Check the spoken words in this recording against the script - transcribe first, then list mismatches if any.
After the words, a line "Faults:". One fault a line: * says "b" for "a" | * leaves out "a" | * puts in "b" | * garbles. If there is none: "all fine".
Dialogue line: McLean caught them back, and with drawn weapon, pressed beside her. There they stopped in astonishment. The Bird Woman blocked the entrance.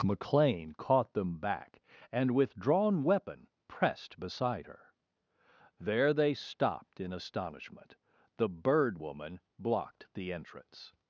McLean caught them back, and with drawn weapon, pressed beside her. There they stopped in astonishment. The Bird Woman blocked the entrance.
Faults:
all fine